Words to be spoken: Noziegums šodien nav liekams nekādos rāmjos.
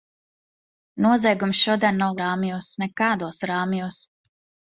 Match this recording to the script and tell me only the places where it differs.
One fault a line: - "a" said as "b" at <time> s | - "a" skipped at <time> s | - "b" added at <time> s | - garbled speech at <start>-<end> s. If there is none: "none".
- "liekams" said as "rāmjos" at 2.2 s